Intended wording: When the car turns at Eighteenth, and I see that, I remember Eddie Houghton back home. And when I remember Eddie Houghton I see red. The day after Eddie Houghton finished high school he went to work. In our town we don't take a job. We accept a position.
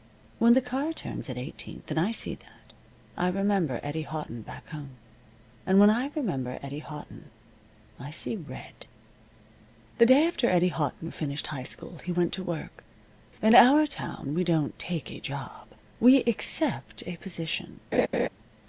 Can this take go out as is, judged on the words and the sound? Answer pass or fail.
fail